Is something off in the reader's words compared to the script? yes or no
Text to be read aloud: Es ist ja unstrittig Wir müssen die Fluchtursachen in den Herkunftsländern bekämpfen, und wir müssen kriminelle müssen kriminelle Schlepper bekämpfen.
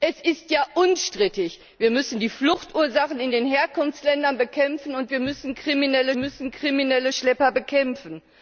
no